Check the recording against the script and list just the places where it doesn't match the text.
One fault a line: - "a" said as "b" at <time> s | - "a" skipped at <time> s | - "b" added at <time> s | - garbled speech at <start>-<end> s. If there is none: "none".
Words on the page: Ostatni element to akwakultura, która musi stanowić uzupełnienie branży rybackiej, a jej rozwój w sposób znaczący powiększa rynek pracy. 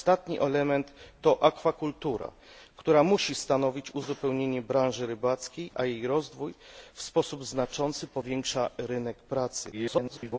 - garbled speech at 9.7-10.4 s